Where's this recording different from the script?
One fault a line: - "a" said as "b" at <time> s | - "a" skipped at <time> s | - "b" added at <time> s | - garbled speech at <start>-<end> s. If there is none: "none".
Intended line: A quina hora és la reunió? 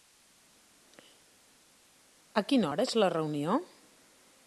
none